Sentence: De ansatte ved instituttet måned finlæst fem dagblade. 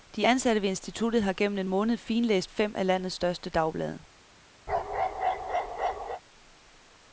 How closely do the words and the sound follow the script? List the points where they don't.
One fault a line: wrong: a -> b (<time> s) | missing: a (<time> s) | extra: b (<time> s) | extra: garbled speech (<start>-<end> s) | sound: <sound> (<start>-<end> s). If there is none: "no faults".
extra: har gennem en (1.2 s)
extra: af landets største (2.8 s)
sound: bark (4.7-6.2 s)